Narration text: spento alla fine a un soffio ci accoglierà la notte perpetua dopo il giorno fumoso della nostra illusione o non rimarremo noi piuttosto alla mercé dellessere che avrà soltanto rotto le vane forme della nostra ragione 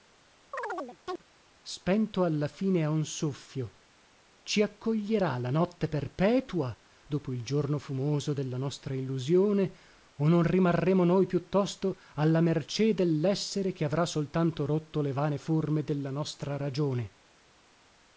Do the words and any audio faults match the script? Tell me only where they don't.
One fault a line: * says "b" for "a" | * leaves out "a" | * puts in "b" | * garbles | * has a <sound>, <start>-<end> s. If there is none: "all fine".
* has a chirp, 0.5-1.2 s